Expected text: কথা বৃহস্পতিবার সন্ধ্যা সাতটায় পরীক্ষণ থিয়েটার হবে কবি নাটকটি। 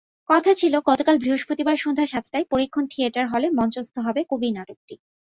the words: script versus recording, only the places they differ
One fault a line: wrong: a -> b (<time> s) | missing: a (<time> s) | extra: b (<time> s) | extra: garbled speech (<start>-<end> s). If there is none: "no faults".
extra: ছিল গতকাল (0.5 s)
extra: হলে মঞ্চস্থ (3.3 s)